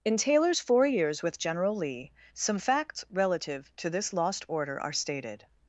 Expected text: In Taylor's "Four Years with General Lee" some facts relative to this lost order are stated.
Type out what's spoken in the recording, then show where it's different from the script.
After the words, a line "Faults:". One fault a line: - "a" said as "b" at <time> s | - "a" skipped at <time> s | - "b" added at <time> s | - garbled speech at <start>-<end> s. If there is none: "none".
In Taylor's "Four Years with General Lee" some facts relative to this lost order are stated.
Faults:
none